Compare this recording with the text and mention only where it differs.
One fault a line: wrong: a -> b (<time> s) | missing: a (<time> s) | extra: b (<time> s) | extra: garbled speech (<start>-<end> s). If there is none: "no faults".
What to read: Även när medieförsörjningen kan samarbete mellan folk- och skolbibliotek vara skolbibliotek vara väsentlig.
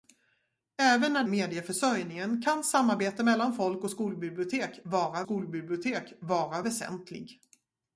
no faults